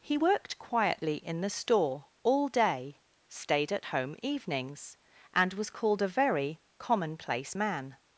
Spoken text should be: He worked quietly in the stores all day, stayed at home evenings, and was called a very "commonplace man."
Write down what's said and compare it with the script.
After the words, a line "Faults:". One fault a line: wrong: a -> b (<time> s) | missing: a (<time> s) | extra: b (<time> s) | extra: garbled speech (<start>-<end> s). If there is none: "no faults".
He worked quietly in the store all day, stayed at home evenings, and was called a very "commonplace man."
Faults:
wrong: stores -> store (1.5 s)